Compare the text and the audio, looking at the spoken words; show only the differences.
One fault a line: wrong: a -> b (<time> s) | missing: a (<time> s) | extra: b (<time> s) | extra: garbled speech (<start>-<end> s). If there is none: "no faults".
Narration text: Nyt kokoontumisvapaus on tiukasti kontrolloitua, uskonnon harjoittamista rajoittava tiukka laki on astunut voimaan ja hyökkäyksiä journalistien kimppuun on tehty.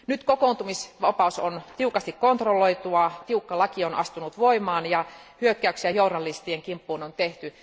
missing: uskonnon harjoittamista rajoittava (3.1 s)